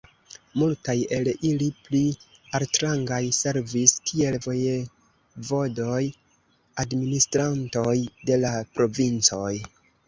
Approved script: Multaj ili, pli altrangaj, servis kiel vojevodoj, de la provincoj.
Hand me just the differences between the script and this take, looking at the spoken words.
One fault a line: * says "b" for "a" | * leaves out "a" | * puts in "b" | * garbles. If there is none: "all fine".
* puts in "el"
* puts in "administrantoj"